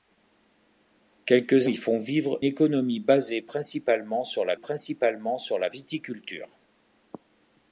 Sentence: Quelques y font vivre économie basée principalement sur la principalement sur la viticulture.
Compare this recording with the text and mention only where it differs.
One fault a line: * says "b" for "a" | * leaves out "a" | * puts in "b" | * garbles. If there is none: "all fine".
all fine